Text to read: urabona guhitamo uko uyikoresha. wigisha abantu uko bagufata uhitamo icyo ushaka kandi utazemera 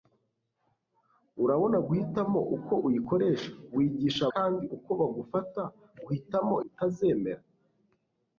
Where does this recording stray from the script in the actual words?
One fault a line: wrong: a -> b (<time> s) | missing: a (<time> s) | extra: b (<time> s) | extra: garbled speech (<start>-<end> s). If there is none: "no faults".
wrong: abantu -> kandi (4.3 s)
missing: icyo ushaka kandi (6.6 s)